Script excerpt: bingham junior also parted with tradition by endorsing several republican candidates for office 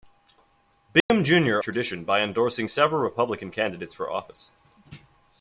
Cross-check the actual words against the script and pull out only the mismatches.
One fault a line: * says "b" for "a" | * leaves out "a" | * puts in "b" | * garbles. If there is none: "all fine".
* leaves out "also parted with"